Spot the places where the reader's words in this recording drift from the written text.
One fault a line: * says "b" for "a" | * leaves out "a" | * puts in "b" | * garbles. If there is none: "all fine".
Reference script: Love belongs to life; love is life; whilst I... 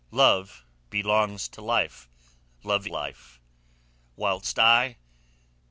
* leaves out "is"